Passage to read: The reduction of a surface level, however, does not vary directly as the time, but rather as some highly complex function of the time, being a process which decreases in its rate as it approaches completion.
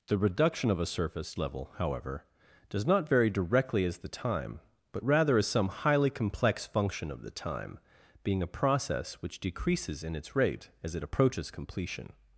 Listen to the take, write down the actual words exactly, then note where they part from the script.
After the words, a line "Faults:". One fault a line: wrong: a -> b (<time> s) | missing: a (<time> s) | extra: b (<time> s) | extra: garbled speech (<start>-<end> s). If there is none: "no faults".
The reduction of a surface level, however, does not vary directly as the time, but rather as some highly complex function of the time, being a process which decreases in its rate as it approaches completion.
Faults:
no faults